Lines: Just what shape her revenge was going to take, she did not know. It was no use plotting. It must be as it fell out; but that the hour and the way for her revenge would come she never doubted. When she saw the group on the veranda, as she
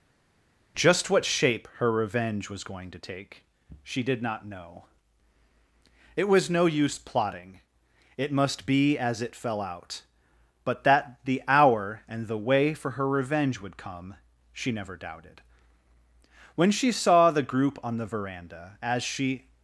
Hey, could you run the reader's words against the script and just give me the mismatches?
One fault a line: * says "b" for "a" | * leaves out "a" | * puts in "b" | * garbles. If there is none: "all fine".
all fine